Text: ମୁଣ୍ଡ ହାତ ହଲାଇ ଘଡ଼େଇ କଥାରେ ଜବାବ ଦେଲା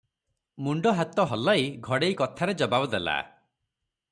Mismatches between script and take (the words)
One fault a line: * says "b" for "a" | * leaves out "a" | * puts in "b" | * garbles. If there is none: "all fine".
all fine